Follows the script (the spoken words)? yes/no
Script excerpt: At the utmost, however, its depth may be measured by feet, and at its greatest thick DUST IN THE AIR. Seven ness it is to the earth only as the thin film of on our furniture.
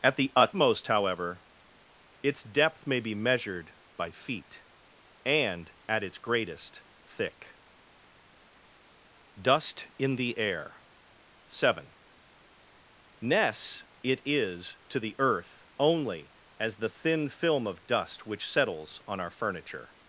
no